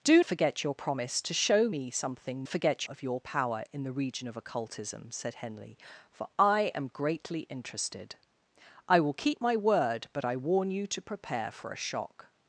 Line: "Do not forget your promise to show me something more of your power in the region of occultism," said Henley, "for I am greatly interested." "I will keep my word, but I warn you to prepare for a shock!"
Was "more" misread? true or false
true